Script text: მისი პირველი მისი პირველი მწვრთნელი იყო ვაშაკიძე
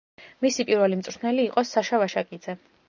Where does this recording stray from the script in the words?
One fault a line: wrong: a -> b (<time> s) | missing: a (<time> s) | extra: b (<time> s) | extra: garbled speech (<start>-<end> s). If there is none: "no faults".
missing: მისი პირველი (1.0 s)
extra: საშა (1.7 s)